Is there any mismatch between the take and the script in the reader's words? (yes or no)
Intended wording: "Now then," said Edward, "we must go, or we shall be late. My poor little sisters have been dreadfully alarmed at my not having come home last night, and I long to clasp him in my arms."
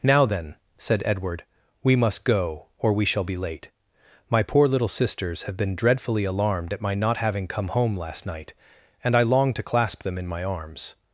yes